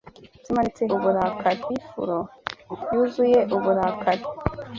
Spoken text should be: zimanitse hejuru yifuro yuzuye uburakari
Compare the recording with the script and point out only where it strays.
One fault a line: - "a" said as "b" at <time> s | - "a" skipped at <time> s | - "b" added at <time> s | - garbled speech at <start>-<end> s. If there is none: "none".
- "hejuru" said as "uburakari" at 0.9 s